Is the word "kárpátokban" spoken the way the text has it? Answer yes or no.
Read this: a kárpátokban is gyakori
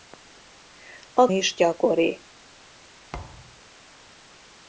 no